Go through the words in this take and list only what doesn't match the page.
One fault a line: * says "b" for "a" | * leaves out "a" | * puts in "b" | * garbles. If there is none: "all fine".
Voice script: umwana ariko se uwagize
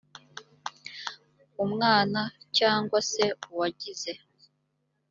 * says "cyangwa" for "ariko"